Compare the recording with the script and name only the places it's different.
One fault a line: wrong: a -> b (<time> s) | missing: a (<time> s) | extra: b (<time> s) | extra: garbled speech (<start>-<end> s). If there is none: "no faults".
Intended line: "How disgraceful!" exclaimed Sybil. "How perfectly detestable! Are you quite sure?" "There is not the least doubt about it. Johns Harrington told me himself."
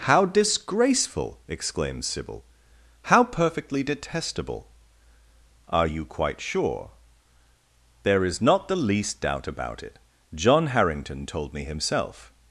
wrong: Johns -> John (10.3 s)